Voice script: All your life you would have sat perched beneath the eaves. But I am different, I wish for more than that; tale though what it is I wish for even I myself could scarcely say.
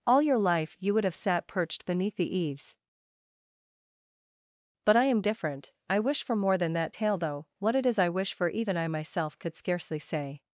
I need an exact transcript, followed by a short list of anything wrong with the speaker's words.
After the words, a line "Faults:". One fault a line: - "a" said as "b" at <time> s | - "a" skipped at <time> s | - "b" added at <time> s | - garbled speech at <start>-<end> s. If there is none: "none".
All your life you would have sat perched beneath the eaves. But I am different, I wish for more than that; tale though what it is I wish for even I myself could scarcely say.
Faults:
none